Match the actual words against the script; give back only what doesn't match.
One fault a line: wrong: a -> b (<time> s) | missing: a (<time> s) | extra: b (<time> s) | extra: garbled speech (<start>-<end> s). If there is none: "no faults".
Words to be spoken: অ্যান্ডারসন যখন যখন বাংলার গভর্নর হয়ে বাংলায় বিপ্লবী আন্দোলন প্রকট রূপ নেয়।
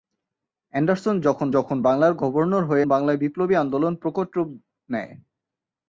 no faults